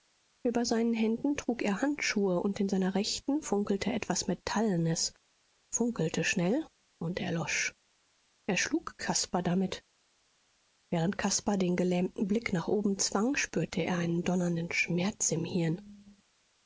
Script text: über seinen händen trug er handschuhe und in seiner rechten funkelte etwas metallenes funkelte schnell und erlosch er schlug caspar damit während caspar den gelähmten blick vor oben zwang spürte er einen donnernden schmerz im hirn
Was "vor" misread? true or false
true